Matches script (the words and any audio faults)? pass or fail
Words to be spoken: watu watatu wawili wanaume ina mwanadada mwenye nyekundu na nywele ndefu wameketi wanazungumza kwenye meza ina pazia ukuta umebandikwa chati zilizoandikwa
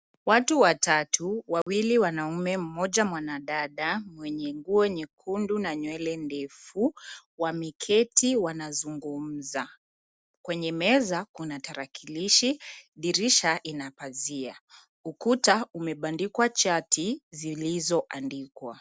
fail